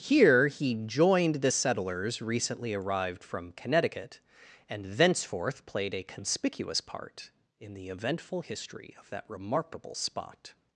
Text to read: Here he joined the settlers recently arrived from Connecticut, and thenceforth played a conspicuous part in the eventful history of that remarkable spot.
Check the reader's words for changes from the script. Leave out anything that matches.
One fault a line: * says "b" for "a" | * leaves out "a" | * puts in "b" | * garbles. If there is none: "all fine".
all fine